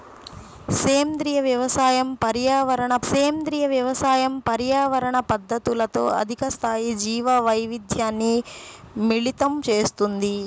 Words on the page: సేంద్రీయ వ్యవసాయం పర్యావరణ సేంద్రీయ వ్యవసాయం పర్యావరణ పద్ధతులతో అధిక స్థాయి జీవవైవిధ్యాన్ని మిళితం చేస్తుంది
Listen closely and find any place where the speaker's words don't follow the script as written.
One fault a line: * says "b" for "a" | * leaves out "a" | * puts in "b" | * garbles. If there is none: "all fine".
all fine